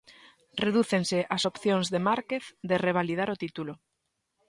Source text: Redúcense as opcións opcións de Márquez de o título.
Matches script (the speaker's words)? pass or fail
fail